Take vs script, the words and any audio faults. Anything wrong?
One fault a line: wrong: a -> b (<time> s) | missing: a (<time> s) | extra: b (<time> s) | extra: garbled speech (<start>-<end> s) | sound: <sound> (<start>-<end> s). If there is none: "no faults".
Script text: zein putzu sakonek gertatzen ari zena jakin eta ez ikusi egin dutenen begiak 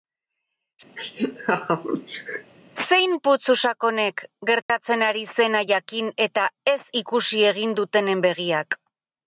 sound: laugh (1.0-2.5 s)
sound: dropout (4.6-4.7 s)